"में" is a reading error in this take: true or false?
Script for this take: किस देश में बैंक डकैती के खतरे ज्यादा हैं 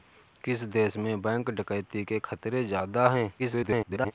false